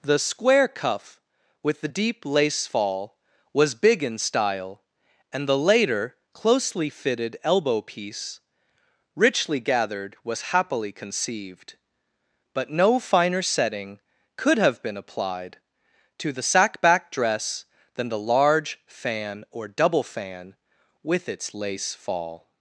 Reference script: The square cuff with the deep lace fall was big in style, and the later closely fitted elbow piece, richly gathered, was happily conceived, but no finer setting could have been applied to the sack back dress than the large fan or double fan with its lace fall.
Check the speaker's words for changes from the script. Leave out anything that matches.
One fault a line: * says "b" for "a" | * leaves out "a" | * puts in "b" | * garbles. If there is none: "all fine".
all fine